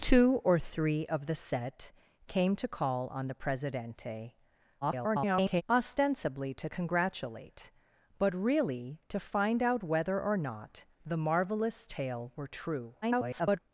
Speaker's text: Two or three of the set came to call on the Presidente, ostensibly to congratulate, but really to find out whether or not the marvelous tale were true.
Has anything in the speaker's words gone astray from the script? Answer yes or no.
yes